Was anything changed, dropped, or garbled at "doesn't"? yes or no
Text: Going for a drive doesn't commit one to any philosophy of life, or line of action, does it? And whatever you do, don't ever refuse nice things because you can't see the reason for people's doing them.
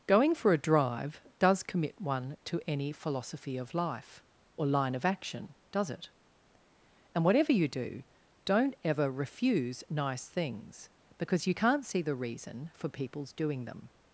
yes